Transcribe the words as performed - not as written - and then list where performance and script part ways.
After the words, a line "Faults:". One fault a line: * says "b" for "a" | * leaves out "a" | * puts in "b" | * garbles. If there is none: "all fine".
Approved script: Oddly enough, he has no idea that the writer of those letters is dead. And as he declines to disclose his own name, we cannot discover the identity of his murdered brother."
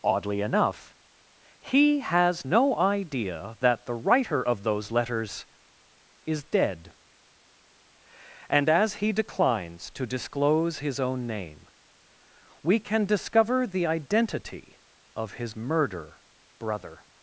Oddly enough, he has no idea that the writer of those letters is dead. And as he declines to disclose his own name, we can discover the identity of his murder brother."
Faults:
* says "can" for "cannot"
* says "murder" for "murdered"